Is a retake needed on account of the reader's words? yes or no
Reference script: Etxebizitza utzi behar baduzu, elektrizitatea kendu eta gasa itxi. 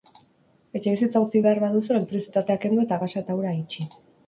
yes